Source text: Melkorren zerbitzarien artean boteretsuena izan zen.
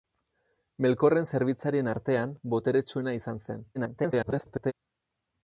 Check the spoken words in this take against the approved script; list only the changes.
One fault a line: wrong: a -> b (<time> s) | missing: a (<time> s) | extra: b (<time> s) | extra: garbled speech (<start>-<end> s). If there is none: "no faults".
extra: garbled speech (3.7-4.7 s)